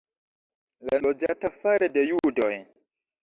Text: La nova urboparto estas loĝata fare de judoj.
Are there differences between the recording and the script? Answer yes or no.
yes